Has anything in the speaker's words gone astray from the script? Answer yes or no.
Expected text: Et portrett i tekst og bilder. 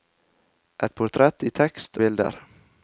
yes